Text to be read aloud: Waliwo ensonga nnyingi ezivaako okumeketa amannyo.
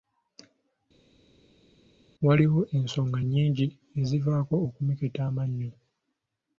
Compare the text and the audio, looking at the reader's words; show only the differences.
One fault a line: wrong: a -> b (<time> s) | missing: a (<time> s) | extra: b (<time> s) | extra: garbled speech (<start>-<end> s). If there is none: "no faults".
no faults